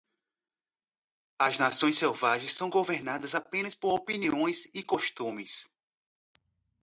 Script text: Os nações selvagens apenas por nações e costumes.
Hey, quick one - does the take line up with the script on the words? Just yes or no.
no